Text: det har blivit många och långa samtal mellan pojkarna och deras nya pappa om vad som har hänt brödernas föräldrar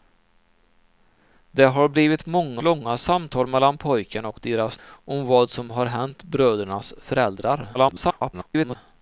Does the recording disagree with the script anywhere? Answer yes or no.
yes